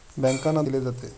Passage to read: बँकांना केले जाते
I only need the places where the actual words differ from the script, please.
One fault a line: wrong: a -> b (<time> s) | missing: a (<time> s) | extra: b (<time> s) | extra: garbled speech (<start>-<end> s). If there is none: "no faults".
no faults